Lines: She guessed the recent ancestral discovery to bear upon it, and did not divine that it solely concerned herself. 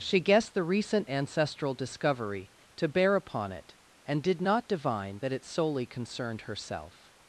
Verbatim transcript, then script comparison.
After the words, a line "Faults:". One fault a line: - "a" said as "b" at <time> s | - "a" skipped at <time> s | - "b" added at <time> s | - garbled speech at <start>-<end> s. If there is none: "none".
She guessed the recent ancestral discovery to bear upon it, and did not divine that it solely concerned herself.
Faults:
none